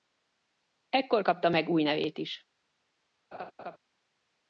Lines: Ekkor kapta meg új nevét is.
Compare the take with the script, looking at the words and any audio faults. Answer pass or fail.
fail